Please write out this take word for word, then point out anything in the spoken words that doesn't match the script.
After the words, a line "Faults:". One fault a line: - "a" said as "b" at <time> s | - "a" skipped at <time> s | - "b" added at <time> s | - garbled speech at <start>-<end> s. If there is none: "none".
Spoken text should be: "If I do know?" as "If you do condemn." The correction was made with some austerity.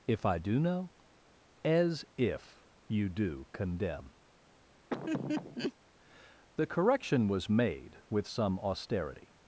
"If I do know?" as "If you do condemn." The correction was made with some austerity.
Faults:
none